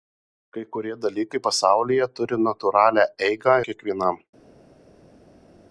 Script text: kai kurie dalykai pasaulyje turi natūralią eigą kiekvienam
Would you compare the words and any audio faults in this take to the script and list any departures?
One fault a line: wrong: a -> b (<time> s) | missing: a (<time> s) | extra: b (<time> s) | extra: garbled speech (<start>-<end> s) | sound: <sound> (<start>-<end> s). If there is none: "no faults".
no faults